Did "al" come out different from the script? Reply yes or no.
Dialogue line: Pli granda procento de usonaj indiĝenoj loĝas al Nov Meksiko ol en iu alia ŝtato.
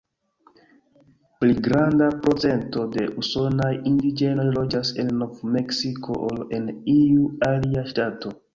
yes